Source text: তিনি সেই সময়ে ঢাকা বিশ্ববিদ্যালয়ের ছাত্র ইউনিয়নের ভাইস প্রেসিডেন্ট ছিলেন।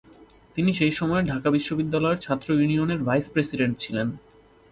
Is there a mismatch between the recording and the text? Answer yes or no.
no